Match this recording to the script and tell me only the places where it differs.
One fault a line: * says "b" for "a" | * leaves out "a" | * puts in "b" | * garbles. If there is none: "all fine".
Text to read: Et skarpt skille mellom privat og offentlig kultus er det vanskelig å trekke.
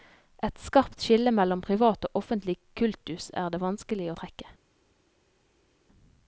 all fine